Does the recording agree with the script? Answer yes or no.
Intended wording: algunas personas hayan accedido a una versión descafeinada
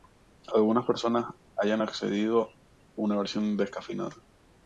yes